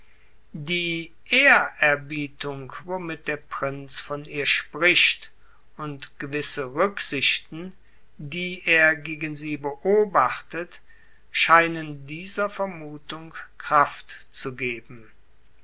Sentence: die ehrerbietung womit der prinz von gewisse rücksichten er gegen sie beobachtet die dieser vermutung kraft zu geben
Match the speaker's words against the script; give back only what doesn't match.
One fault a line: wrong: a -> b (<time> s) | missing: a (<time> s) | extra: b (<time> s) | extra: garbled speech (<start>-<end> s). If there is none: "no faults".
extra: ihr spricht und (4.2 s)
extra: die (8.2 s)
wrong: die -> scheinen (11.3 s)